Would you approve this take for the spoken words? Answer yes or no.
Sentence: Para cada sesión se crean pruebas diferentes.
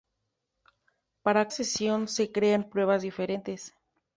no